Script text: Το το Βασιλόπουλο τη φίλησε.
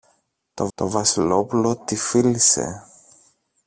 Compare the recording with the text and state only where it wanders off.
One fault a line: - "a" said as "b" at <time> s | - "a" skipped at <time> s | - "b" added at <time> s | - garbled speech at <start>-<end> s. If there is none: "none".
none